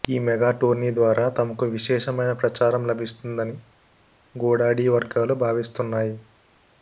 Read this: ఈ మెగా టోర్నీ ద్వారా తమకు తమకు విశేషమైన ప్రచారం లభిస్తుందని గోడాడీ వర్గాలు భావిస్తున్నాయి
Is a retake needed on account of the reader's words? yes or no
yes